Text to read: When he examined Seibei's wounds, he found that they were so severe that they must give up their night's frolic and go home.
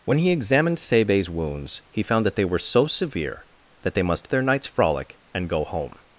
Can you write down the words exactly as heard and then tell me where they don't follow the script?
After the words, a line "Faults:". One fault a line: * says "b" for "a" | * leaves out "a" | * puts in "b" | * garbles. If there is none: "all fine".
When he examined Seibei's wounds, he found that they were so severe that they must their night's frolic and go home.
Faults:
* leaves out "give up"